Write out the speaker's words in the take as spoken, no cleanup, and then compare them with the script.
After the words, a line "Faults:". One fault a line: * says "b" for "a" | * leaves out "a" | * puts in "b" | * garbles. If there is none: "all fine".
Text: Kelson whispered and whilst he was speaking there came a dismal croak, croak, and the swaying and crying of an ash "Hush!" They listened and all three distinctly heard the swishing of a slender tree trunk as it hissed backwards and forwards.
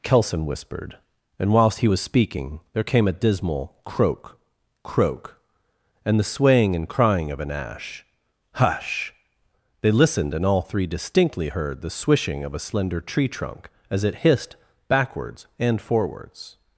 Kelson whispered and whilst he was speaking there came a dismal croak, croak, and the swaying and crying of an ash "Hush!" They listened and all three distinctly heard the swishing of a slender tree trunk as it hissed backwards and forwards.
Faults:
all fine